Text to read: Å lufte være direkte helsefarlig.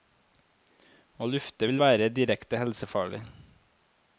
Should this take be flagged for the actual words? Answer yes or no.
yes